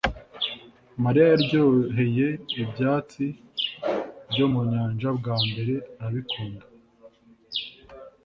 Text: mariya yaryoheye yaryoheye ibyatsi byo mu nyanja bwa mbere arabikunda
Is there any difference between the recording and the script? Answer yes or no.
yes